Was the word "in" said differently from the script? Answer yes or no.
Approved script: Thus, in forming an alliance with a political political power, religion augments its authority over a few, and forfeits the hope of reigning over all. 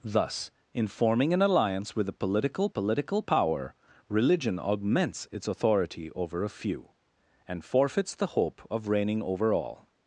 no